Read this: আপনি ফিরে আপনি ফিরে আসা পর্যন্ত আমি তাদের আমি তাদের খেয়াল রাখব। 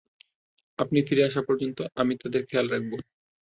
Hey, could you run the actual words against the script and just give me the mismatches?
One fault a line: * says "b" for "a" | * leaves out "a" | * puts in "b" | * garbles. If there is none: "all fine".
* leaves out "আপনি ফিরে"
* leaves out "আমি তাদের"